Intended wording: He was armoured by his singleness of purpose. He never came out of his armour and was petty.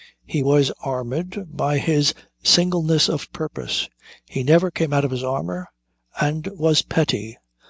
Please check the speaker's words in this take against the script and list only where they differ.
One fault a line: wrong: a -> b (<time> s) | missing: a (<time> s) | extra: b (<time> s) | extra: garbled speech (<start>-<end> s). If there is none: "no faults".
no faults